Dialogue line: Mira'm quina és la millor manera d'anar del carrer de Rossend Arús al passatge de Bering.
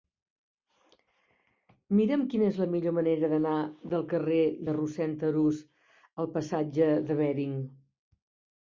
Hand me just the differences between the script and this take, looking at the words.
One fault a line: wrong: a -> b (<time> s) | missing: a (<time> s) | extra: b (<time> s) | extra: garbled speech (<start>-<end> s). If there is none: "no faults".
no faults